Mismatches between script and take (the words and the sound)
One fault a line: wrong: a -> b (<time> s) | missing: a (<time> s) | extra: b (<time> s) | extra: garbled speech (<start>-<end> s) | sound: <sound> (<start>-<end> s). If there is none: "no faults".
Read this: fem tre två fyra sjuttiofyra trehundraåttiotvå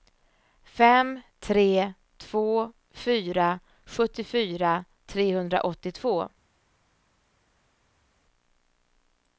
no faults